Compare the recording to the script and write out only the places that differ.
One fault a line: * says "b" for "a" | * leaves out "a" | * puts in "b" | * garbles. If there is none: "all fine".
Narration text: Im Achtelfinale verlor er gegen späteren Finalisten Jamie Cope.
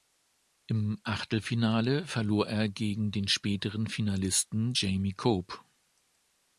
* puts in "den"